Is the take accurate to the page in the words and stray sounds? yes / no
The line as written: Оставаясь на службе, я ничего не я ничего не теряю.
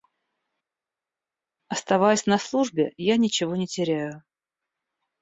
no